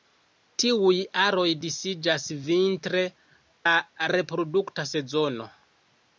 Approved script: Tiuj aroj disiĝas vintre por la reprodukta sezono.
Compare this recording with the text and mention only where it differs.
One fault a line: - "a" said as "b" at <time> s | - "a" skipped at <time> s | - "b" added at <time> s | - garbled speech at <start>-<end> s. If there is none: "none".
- "por" skipped at 3.0 s